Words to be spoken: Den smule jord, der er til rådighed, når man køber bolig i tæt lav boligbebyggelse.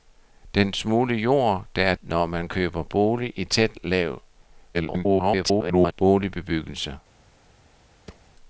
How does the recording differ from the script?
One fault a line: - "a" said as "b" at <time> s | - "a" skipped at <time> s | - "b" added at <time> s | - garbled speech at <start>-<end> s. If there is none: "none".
- "til rådighed" skipped at 1.9 s
- garbled speech at 4.7-5.9 s